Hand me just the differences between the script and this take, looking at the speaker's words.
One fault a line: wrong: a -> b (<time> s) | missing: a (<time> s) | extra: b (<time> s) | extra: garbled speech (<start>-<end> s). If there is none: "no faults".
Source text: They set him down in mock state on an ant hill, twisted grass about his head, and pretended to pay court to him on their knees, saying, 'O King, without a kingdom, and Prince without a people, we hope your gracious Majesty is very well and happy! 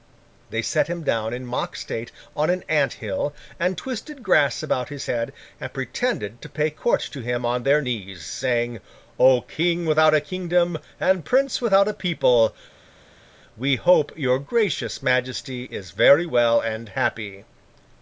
extra: and (3.6 s)